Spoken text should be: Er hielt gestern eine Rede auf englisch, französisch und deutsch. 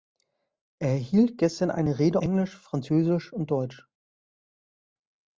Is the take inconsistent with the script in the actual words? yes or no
yes